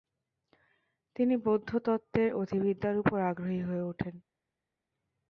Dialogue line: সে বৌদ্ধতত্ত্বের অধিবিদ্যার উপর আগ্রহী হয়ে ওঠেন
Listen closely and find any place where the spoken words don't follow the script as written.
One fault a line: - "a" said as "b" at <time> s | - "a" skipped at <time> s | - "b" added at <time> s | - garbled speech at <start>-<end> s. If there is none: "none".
- "সে" said as "তিনি" at 1.1 s